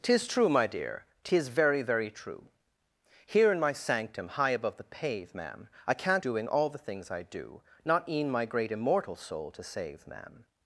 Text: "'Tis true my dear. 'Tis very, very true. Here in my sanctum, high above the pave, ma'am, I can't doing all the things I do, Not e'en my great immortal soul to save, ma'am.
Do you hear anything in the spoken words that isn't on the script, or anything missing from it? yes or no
no